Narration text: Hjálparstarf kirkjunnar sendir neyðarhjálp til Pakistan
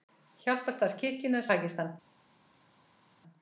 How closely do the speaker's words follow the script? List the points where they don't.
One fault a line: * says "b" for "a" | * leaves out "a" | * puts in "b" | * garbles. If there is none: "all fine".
* leaves out "sendir neyðarhjálp til"